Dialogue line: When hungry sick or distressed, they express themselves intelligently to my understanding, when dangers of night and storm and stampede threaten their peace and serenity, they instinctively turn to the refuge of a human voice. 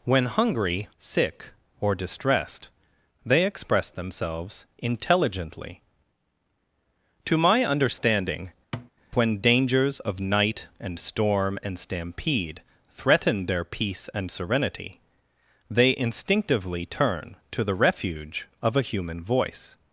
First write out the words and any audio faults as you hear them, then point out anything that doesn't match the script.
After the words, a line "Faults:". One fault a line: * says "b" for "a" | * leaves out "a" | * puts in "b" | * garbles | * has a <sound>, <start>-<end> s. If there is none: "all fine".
When hungry sick or distressed, they express themselves intelligently to my understanding, when dangers of night and storm and stampede threaten their peace and serenity, they instinctively turn to the refuge of a human voice.
Faults:
* has a thud, 8.7-8.9 s